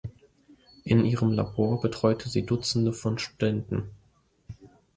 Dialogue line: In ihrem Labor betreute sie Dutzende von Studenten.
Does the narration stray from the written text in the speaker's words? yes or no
no